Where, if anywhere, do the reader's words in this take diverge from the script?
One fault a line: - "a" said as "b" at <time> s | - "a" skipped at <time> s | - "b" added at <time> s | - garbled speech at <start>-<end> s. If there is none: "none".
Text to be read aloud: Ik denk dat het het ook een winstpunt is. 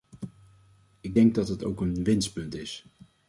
- "het" skipped at 1.6 s